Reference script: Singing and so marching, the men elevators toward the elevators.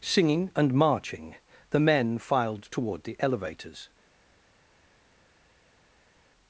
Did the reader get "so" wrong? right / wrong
wrong